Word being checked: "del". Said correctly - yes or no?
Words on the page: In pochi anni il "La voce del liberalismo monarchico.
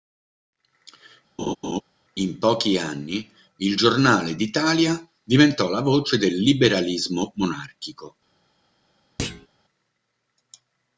yes